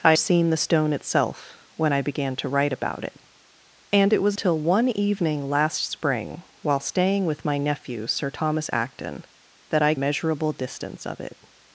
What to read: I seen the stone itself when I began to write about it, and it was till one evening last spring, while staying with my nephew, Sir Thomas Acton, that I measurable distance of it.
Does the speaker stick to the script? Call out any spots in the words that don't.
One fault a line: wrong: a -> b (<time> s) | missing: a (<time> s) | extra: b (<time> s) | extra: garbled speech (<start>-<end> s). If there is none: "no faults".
no faults